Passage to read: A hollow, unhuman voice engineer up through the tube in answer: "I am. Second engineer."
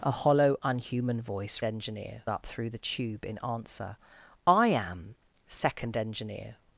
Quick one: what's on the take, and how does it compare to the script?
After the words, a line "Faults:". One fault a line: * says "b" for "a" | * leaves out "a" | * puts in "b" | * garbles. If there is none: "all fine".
A hollow, unhuman voice engineer up through the tube in answer: "I am. Second engineer."
Faults:
all fine